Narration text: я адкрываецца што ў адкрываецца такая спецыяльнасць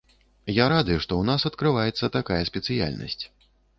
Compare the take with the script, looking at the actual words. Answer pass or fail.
fail